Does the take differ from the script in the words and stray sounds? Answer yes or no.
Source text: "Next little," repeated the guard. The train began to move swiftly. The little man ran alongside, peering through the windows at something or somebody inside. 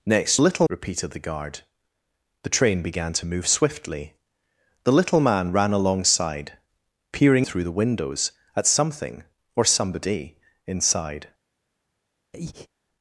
yes